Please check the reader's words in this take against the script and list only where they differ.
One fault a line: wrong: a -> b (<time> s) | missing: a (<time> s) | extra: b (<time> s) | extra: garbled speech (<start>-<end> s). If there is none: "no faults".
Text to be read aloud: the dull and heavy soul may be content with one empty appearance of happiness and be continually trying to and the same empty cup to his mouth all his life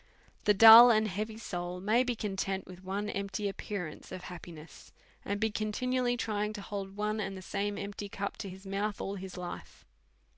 extra: hold one (6.6 s)